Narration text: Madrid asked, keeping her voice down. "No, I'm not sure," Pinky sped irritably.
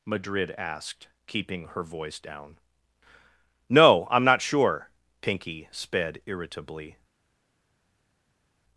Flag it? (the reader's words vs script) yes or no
no